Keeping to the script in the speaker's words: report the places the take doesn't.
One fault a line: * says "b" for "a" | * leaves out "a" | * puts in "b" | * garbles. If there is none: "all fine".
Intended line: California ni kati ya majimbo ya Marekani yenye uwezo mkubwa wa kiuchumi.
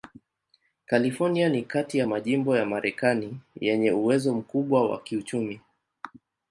all fine